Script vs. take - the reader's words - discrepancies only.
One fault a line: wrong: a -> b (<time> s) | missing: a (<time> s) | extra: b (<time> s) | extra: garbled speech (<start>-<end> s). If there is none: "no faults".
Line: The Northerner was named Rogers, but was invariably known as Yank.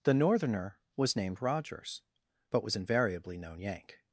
missing: as (3.6 s)